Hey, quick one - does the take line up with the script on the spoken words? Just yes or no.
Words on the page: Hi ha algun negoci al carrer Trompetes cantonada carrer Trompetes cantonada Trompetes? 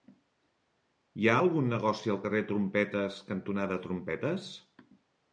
no